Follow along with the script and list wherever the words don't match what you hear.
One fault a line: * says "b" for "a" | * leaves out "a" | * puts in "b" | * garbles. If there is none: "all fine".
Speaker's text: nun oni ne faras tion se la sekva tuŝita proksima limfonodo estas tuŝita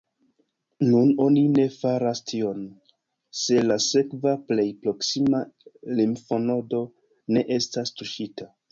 * says "plej" for "tuŝita"
* puts in "ne"